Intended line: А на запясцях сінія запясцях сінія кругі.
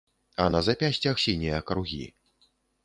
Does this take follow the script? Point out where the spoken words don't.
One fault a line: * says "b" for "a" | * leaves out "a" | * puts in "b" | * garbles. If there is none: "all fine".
* leaves out "запясцях сінія"